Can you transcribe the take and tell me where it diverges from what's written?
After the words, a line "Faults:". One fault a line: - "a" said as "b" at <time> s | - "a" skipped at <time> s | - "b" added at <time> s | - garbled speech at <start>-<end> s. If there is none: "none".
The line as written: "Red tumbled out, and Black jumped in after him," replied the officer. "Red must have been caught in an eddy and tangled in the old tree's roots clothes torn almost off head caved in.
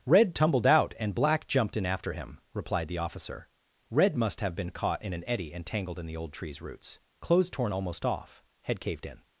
"Red tumbled out, and Black jumped in after him," replied the officer. "Red must have been caught in an eddy and tangled in the old tree's roots clothes torn almost off head caved in.
Faults:
none